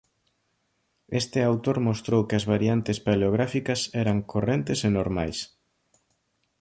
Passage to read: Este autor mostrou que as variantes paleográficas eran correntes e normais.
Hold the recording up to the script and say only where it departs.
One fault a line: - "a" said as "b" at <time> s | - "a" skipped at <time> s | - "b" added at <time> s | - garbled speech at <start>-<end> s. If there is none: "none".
none